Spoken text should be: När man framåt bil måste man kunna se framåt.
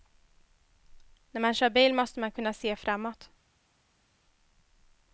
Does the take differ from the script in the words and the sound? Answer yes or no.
yes